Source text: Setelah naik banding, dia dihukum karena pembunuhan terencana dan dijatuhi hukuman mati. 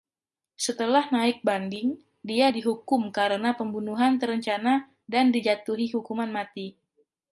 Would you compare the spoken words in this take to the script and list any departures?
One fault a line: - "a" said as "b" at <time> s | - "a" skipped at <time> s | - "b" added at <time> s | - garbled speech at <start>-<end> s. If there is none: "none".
none